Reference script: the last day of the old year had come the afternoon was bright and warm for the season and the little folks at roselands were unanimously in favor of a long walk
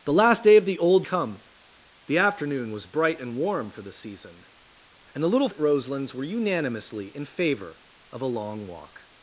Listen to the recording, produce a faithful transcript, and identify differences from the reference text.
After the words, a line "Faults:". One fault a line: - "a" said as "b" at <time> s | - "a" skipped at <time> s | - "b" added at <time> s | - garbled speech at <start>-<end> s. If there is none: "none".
the last day of the old come the afternoon was bright and warm for the season and the little at roselands were unanimously in favor of a long walk
Faults:
- "year had" skipped at 1.1 s
- "folks" skipped at 5.5 s